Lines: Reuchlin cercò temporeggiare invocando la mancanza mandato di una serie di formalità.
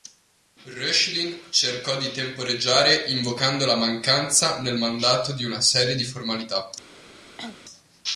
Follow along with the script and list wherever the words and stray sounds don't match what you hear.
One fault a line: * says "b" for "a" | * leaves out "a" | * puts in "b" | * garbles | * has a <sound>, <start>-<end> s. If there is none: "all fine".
* puts in "di"
* puts in "nel"
* has a cough, 7.4-7.6 s